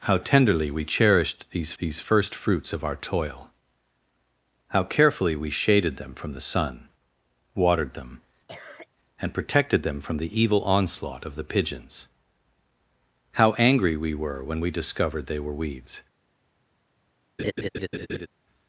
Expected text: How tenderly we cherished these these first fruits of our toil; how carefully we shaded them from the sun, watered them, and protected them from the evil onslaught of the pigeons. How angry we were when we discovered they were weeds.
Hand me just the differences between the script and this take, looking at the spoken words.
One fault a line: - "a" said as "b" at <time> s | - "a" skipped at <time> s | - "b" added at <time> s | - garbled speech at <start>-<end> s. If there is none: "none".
none